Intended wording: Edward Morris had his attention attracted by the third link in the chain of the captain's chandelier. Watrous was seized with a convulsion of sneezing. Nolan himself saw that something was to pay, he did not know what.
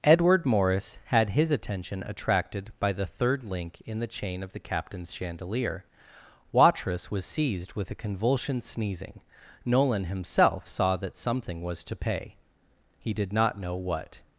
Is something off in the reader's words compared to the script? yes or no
yes